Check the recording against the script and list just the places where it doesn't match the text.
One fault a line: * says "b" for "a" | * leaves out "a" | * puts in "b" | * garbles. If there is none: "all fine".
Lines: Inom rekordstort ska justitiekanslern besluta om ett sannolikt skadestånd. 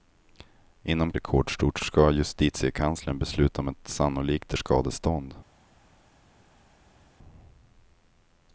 all fine